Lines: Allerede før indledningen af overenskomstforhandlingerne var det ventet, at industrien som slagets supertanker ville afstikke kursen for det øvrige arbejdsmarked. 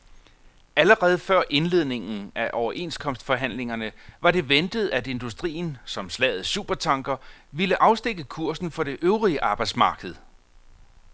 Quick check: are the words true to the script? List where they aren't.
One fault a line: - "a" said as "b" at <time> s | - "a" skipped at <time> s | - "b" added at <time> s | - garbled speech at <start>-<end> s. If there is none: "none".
none